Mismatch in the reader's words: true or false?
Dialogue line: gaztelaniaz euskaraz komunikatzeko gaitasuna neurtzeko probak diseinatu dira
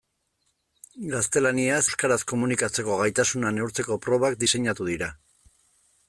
false